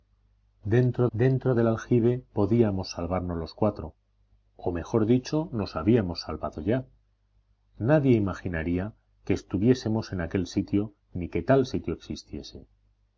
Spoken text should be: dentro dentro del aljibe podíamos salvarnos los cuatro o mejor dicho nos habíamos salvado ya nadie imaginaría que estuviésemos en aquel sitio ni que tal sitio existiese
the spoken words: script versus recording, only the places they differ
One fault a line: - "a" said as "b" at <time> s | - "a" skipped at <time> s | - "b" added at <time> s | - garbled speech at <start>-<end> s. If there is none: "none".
none